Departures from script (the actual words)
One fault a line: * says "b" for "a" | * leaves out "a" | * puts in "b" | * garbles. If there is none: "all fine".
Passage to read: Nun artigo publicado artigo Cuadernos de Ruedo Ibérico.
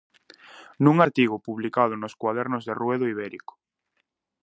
* says "nos" for "artigo"